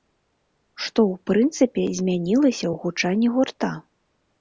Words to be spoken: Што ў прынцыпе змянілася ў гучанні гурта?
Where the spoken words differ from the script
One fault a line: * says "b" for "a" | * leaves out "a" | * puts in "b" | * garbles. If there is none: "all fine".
all fine